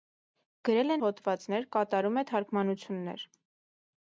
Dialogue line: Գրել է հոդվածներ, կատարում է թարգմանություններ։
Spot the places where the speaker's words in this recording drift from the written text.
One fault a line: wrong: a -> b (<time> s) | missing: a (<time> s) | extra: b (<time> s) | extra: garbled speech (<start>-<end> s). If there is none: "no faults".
no faults